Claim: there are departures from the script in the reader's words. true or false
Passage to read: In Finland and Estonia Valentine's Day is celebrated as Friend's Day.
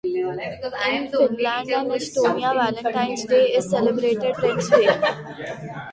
true